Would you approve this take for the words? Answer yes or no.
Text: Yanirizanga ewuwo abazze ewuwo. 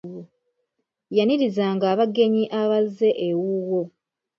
no